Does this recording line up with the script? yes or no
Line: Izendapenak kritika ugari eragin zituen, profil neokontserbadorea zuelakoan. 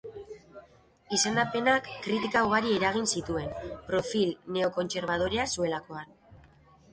yes